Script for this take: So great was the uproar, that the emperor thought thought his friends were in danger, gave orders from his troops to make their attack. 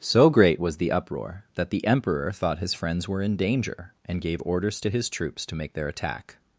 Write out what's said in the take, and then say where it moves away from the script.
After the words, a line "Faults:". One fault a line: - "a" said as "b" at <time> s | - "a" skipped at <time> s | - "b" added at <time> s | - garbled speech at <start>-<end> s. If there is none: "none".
So great was the uproar, that the emperor thought his friends were in danger, and gave orders to his troops to make their attack.
Faults:
- "thought" skipped at 2.6 s
- "and" added at 4.1 s
- "from" said as "to" at 4.8 s